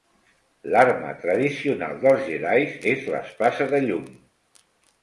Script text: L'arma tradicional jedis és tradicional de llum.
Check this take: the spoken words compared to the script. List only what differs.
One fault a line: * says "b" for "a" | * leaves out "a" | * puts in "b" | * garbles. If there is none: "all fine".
* puts in "dels"
* says "l'espasa" for "tradicional"